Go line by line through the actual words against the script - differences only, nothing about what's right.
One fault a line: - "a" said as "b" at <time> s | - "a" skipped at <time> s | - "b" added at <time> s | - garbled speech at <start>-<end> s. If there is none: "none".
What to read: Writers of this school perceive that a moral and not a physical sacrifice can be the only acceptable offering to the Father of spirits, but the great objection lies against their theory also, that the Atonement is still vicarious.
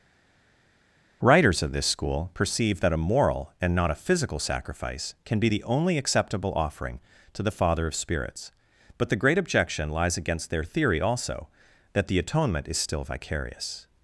none